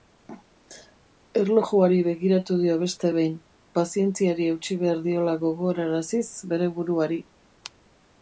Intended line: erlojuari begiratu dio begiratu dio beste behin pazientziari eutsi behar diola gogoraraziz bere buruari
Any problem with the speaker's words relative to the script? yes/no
yes